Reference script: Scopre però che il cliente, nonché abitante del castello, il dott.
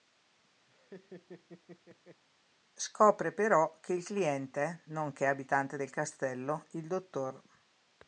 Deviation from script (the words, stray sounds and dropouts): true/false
true